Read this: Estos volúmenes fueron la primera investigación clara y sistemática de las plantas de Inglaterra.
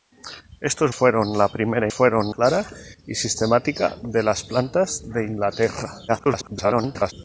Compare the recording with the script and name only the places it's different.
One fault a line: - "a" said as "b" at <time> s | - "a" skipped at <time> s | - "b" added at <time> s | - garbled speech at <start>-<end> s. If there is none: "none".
- "volúmenes" skipped at 0.9 s
- "investigación" said as "fueron" at 1.9 s
- garbled speech at 6.1-7.1 s